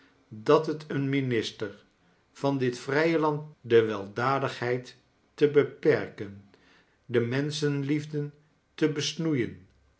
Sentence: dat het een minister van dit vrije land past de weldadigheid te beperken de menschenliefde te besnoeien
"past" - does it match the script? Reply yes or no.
no